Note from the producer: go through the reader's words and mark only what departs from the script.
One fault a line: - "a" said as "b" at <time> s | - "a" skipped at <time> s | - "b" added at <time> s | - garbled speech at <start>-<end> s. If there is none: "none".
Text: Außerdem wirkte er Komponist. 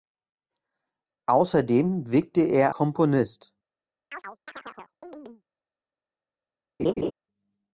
none